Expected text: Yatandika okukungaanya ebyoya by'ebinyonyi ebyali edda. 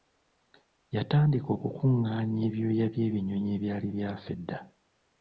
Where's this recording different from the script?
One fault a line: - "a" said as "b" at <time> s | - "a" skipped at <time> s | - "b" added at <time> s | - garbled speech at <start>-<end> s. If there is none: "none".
- "byafa" added at 4.0 s